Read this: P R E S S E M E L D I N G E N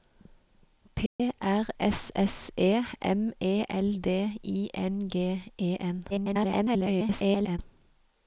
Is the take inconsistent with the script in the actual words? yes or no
yes